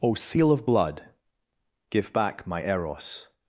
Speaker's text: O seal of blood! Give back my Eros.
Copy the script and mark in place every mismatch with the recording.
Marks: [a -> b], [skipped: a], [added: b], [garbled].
O seal of blood! Give back my Eros.